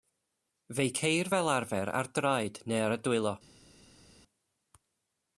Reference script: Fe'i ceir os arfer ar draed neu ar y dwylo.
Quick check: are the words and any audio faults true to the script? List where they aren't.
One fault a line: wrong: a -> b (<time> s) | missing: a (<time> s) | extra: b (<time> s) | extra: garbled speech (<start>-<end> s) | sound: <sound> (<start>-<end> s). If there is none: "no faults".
wrong: os -> fel (1.3 s)